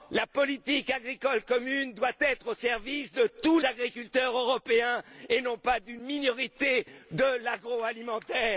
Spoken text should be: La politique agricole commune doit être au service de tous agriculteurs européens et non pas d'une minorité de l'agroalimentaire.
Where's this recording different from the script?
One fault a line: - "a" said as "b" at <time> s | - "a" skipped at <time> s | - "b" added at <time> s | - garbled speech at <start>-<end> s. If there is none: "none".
none